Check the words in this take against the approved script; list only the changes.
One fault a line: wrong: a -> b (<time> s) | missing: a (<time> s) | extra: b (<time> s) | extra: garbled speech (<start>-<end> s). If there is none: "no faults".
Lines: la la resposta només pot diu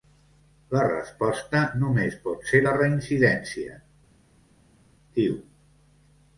missing: la (0.8 s)
extra: ser la reincidència (2.5 s)